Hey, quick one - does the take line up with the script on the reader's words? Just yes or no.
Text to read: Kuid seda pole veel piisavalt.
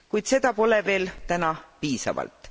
no